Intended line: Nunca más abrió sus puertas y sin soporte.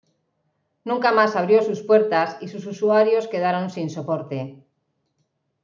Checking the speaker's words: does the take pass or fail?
fail